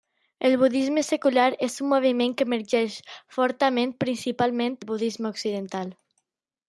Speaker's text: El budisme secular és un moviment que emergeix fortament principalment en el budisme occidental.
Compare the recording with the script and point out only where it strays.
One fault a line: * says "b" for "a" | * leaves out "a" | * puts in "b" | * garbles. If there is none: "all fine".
* leaves out "en"